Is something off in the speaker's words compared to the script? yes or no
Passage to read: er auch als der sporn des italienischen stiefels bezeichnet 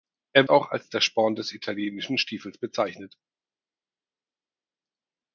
no